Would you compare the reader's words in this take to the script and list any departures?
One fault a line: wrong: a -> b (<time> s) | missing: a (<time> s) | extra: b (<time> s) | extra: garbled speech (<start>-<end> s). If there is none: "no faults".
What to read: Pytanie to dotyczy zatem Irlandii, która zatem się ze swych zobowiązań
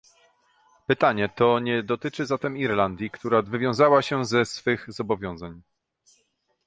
extra: nie (1.6 s)
wrong: zatem -> wywiązała (3.4 s)